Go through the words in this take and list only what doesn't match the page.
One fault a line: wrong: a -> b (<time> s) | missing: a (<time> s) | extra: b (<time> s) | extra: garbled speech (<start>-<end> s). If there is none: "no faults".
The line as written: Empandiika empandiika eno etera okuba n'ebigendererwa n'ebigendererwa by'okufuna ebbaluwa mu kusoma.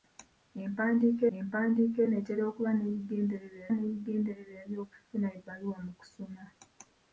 no faults